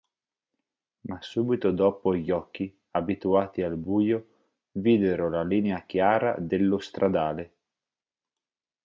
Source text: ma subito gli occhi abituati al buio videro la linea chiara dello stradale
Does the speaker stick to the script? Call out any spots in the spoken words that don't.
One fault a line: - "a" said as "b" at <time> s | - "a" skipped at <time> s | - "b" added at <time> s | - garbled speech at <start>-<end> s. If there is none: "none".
- "dopo" added at 1.7 s